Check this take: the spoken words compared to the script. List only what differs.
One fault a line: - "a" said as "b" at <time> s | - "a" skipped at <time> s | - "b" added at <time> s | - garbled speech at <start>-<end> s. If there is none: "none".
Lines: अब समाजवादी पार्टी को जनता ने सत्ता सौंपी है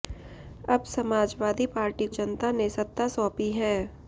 - "को" skipped at 2.1 s